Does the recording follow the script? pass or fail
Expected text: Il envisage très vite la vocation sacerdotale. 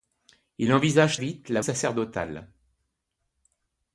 fail